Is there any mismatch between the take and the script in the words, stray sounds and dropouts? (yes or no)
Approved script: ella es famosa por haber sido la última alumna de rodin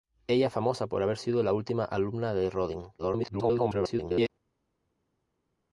yes